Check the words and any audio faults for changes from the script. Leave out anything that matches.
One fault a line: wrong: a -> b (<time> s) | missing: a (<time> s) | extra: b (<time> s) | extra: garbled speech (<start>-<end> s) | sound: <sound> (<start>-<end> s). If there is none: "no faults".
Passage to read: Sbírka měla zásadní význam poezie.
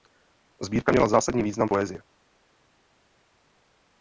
no faults